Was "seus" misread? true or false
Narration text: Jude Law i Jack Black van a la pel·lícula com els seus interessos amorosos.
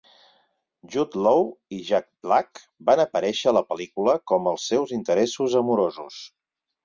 false